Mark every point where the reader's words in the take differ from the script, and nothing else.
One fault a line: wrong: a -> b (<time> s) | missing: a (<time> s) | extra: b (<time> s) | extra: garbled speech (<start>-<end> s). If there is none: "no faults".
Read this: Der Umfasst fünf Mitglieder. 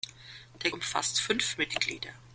no faults